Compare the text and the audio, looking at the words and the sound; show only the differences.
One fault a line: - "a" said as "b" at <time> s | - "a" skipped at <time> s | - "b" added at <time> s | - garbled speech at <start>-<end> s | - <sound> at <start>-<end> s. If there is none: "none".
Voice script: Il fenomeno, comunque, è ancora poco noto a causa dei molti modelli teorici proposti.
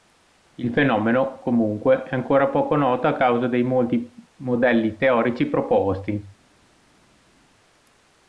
none